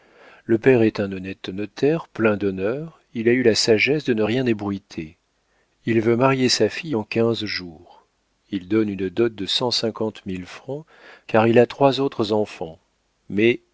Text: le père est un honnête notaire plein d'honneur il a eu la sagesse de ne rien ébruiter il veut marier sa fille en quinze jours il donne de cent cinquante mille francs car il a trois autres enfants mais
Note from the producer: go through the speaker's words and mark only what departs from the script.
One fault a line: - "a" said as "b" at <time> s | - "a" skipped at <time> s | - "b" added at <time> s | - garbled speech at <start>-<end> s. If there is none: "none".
- "une dot" added at 8.9 s